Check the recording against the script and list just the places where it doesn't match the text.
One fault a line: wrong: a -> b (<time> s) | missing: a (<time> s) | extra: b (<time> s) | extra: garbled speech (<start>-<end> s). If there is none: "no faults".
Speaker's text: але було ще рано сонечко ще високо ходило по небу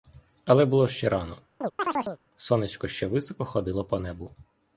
no faults